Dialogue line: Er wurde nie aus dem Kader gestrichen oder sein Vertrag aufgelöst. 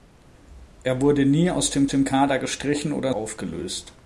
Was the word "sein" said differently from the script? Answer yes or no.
yes